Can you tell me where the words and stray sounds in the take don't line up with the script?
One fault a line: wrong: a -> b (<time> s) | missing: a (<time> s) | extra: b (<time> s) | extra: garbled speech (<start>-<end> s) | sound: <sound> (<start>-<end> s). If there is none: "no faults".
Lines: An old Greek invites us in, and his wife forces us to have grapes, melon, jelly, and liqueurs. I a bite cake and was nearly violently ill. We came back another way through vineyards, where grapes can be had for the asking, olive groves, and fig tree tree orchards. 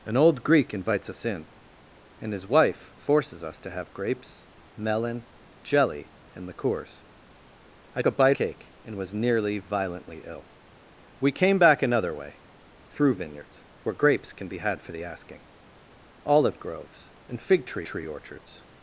no faults